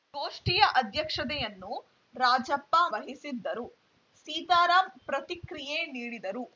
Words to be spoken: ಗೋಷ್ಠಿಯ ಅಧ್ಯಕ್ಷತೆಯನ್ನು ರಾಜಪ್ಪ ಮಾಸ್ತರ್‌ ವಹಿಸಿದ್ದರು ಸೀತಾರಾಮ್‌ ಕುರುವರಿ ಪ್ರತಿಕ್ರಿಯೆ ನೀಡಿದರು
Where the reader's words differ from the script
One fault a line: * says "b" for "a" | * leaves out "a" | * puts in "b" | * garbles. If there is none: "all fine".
* leaves out "ಮಾಸ್ತರ್"
* leaves out "ಕುರುವರಿ"